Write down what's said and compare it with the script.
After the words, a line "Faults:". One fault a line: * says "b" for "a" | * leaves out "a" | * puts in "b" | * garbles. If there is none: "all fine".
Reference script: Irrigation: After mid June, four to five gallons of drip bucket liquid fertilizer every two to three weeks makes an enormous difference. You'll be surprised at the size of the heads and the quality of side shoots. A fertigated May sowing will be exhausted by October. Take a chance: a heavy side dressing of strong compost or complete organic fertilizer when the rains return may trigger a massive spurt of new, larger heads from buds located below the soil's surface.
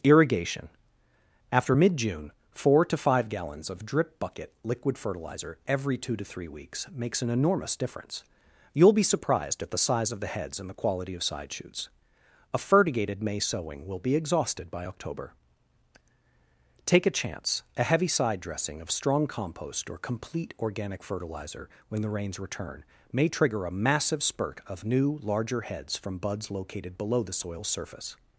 Irrigation: After mid June, four to five gallons of drip bucket liquid fertilizer every two to three weeks makes an enormous difference. You'll be surprised at the size of the heads and the quality of side shoots. A fertigated May sowing will be exhausted by October. Take a chance: a heavy side dressing of strong compost or complete organic fertilizer when the rains return may trigger a massive spurt of new, larger heads from buds located below the soil's surface.
Faults:
all fine